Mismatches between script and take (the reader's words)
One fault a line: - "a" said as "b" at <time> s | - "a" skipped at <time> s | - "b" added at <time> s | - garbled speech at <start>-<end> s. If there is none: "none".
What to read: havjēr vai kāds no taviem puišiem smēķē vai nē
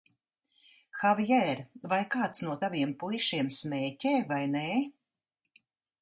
none